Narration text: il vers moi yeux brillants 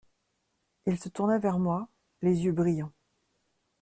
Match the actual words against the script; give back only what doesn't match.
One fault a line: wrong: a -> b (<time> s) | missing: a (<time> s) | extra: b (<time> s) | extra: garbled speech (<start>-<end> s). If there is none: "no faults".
extra: se tourna (1.0 s)
extra: les (2.2 s)